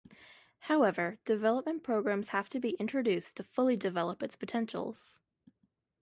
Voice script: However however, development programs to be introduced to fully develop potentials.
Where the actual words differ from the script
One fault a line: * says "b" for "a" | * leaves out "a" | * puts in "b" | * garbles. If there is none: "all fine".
* leaves out "however"
* puts in "have"
* puts in "its"